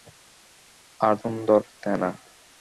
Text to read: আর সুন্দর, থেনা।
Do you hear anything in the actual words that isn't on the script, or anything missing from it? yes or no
no